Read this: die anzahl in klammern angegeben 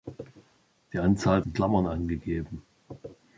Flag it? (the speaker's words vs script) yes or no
no